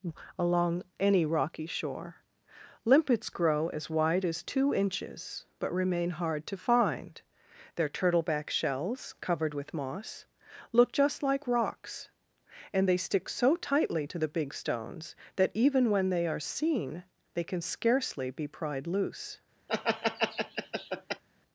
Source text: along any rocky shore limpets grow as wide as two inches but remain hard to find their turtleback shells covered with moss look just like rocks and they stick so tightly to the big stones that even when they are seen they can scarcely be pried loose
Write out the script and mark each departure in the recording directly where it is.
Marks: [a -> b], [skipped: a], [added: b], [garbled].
along any rocky shore limpets grow as wide as two inches but remain hard to find their turtleback shells covered with moss look just like rocks and they stick so tightly to the big stones that even when they are seen they can scarcely be pried loose